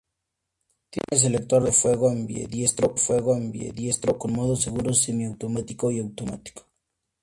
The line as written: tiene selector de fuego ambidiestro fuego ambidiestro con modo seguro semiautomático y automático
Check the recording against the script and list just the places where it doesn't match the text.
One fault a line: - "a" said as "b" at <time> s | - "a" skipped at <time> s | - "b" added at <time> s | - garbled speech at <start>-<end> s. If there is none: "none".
none